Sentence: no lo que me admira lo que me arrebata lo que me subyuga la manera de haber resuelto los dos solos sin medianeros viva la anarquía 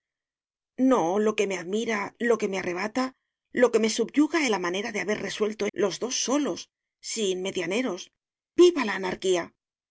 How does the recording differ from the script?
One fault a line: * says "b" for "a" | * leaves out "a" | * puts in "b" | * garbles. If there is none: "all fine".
all fine